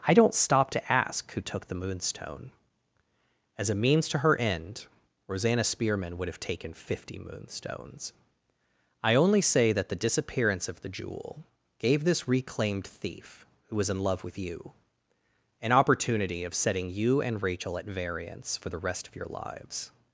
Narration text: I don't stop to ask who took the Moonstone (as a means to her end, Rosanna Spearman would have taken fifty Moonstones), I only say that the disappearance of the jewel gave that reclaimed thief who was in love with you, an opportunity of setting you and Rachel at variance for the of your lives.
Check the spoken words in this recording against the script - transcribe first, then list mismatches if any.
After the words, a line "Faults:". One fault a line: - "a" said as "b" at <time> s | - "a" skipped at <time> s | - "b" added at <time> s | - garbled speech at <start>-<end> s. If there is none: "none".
I don't stop to ask who took the Moonstone (as a means to her end, Rosanna Spearman would have taken fifty Moonstones), I only say that the disappearance of the jewel gave this reclaimed thief who was in love with you, an opportunity of setting you and Rachel at variance for the rest of your lives.
Faults:
- "that" said as "this" at 12.0 s
- "rest" added at 18.8 s